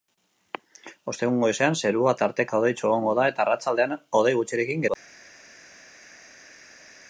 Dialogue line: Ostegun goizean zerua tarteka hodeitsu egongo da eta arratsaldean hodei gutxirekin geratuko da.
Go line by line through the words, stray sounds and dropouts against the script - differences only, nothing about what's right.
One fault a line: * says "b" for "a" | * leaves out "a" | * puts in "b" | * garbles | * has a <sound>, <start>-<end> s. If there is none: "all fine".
* leaves out "geratuko"